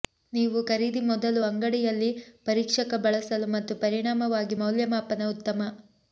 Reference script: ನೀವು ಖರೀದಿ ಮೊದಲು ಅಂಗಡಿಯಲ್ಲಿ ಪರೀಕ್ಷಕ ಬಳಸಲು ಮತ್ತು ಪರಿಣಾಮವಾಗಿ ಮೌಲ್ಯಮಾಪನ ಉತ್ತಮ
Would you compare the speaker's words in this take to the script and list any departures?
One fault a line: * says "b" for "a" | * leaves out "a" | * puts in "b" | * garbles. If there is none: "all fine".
all fine